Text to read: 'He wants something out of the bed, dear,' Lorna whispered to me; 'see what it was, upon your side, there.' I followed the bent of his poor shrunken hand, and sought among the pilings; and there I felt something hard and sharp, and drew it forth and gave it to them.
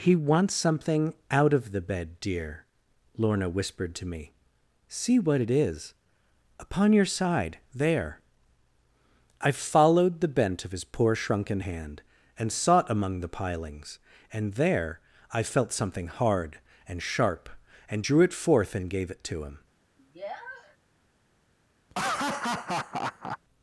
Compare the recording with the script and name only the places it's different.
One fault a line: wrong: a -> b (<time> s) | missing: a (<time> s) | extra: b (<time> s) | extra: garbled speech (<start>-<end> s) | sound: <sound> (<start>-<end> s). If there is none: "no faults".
wrong: was -> is (5.5 s)
wrong: them -> him (19.4 s)
sound: sniff (20.0-20.8 s)
sound: laugh (21.9-23.4 s)